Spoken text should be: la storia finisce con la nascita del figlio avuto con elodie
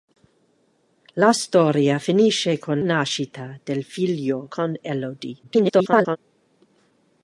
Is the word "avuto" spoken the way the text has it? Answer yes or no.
no